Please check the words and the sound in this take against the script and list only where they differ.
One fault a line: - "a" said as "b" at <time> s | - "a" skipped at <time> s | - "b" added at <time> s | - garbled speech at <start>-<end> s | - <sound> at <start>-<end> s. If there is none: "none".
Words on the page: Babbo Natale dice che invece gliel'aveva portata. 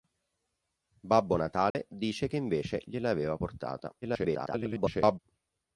- dropout at 1.7-1.7 s
- garbled speech at 4.0-5.2 s